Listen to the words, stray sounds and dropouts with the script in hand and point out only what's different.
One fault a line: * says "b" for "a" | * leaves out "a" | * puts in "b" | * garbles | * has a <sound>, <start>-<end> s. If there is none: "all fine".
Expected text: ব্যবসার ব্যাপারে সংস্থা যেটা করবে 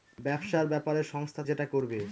all fine